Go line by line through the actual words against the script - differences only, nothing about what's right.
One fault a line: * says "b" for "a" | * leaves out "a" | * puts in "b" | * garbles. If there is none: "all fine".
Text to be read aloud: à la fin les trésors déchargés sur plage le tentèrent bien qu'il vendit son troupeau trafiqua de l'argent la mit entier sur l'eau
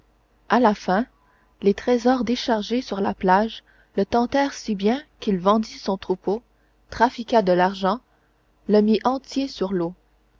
* puts in "la"
* puts in "si"
* says "le" for "la"